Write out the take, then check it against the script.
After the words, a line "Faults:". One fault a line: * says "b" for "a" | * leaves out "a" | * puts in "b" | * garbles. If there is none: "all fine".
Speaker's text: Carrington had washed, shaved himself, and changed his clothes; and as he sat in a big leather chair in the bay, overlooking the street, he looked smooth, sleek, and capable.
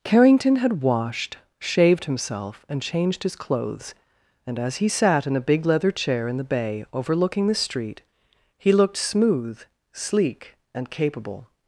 Carrington had washed, shaved himself, and changed his clothes; and as he sat in a big leather chair in the bay, overlooking the street, he looked smooth, sleek, and capable.
Faults:
all fine